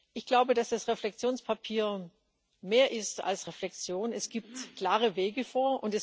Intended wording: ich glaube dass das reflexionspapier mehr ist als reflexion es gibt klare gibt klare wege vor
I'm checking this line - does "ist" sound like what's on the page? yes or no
yes